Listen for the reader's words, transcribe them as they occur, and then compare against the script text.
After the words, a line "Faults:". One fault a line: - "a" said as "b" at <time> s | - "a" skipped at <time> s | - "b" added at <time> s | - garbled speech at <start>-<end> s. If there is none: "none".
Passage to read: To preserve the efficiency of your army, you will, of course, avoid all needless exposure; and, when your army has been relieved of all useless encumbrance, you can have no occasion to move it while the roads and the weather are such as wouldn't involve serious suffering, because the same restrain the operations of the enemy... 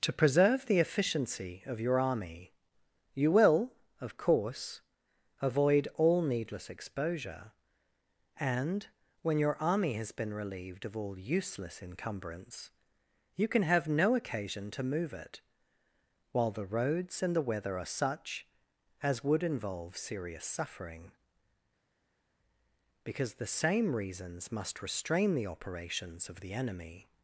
To preserve the efficiency of your army, you will, of course, avoid all needless exposure; and, when your army has been relieved of all useless encumbrance, you can have no occasion to move it while the roads and the weather are such as would involve serious suffering, because the same reasons must restrain the operations of the enemy...
Faults:
- "wouldn't" said as "would" at 19.2 s
- "reasons must" added at 23.9 s